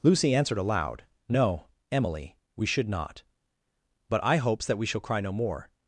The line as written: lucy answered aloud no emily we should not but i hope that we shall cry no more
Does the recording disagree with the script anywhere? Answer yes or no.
yes